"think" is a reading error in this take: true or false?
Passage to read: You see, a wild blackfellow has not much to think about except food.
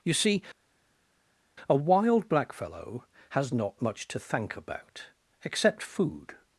true